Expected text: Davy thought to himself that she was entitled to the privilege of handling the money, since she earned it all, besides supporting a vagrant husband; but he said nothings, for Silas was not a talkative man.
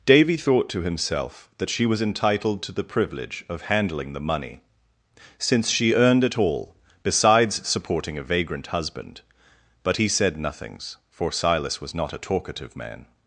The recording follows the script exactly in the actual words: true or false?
true